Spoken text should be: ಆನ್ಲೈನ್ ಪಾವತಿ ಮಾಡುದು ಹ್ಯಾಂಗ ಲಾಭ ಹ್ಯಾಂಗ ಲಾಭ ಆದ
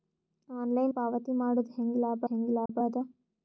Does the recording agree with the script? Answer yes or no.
yes